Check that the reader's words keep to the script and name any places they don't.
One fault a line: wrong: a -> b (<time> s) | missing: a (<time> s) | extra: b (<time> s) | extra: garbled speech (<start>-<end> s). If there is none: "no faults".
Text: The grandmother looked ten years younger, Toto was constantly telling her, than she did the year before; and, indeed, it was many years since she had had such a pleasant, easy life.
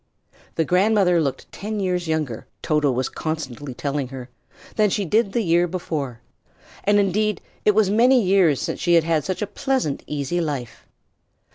no faults